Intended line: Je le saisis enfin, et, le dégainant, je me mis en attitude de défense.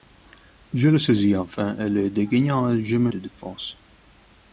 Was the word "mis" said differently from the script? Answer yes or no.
yes